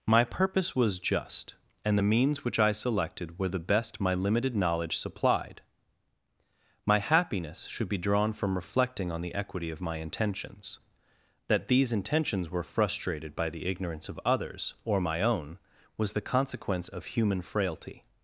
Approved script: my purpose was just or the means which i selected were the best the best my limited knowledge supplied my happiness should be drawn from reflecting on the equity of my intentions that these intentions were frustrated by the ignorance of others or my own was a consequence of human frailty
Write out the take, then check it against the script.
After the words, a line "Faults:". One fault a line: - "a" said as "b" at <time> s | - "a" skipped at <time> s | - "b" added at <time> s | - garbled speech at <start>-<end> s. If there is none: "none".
my purpose was just and the means which i selected were the best my limited knowledge supplied my happiness should be drawn from reflecting on the equity of my intentions that these intentions were frustrated by the ignorance of others or my own was the consequence of human frailty
Faults:
- "or" said as "and" at 1.9 s
- "the best" skipped at 4.0 s
- "a" said as "the" at 16.1 s